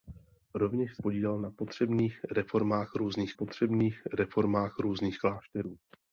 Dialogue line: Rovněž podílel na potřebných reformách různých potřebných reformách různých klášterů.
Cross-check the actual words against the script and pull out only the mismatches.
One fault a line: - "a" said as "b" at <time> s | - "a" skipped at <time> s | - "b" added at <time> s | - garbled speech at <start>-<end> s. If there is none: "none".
none